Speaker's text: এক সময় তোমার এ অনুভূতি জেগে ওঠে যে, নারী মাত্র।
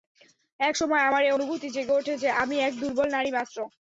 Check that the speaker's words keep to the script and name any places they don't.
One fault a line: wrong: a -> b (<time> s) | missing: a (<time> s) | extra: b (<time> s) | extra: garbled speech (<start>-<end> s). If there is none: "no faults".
wrong: তোমার -> আমার (1.1 s)
extra: আমি এক দুর্বল (2.4 s)